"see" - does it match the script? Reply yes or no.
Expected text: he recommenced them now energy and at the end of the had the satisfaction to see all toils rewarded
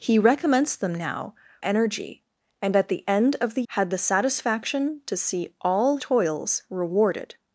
yes